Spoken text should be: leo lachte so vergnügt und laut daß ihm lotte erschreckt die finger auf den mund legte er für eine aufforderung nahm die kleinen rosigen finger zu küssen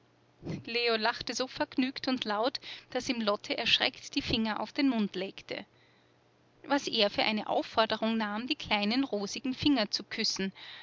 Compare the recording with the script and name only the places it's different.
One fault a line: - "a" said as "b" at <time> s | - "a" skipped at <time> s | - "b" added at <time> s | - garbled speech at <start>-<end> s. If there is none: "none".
- "was" added at 6.6 s